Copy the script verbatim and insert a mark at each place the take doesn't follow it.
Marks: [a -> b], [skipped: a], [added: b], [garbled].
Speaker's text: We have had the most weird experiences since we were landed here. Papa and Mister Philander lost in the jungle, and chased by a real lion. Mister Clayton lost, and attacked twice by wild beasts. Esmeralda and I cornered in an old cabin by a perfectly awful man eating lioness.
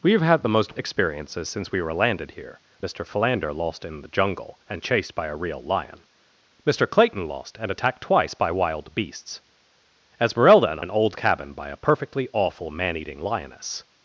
We have had the most [skipped: weird] experiences since we were landed here. [skipped: Papa and] Mister Philander lost in the jungle, and chased by a real lion. Mister Clayton lost, and attacked twice by wild beasts. Esmeralda and [skipped: I cornered in] an old cabin by a perfectly awful man eating lioness.